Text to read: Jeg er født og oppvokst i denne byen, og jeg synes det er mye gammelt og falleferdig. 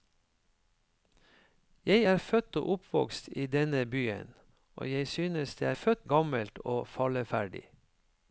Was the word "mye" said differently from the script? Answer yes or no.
yes